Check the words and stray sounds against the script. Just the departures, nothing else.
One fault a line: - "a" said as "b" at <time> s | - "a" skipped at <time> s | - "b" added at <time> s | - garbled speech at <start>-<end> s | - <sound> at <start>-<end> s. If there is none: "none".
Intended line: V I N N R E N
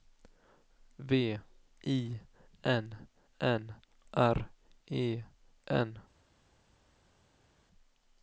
none